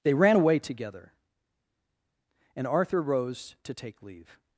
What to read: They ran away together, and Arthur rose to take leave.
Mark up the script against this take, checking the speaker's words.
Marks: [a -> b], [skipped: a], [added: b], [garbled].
They ran away together, and Arthur rose to take leave.